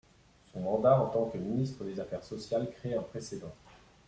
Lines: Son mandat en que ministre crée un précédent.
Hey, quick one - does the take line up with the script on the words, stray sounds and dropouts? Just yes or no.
no